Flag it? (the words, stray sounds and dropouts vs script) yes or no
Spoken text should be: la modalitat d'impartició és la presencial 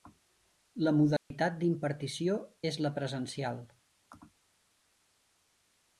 yes